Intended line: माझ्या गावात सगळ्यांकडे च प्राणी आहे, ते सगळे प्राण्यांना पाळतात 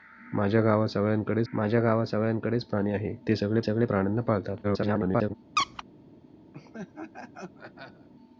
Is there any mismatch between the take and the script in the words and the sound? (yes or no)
yes